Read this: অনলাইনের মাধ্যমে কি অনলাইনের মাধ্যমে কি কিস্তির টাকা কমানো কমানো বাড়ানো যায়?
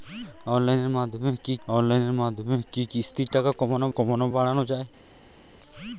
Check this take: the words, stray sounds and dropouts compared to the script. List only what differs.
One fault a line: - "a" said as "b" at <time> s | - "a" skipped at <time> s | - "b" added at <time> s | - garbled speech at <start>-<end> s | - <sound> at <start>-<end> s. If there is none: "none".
none